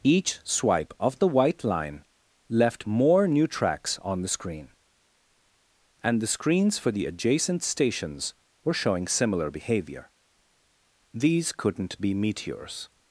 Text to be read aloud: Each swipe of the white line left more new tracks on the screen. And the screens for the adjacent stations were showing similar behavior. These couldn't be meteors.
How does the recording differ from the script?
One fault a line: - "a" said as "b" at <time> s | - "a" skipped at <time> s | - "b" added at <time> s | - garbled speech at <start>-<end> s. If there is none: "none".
none